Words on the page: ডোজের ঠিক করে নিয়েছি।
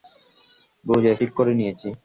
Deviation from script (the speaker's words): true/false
false